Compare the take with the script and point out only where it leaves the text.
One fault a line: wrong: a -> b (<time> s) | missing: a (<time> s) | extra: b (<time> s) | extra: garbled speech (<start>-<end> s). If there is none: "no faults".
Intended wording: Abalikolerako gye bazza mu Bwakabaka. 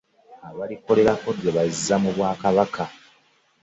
no faults